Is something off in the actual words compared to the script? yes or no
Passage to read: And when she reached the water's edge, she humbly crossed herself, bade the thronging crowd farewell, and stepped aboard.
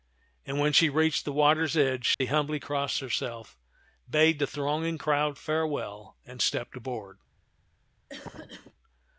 no